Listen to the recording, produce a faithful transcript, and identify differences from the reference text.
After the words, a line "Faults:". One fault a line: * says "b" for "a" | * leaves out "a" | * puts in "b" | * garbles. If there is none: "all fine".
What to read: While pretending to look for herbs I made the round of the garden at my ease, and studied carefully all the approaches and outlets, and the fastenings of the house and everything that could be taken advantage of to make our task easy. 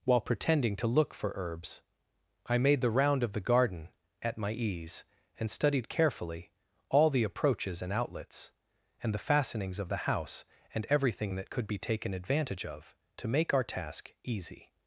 While pretending to look for herbs I made the round of the garden at my ease, and studied carefully all the approaches and outlets, and the fastenings of the house and everything that could be taken advantage of to make our task easy.
Faults:
all fine